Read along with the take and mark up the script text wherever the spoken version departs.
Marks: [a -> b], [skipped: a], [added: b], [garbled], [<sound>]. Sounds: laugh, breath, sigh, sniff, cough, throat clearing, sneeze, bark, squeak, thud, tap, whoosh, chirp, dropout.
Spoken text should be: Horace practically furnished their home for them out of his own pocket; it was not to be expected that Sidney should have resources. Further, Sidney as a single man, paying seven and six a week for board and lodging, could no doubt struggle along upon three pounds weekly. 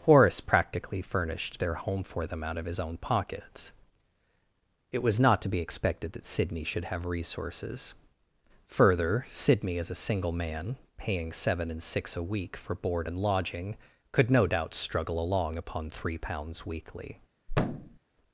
Horace practically furnished their home for them out of his own [pocket; -> pockets] it was not to be expected that Sidney should have resources. Further, Sidney as a single man, paying seven and six a week for board and lodging, could no doubt struggle along upon three pounds weekly. [thud]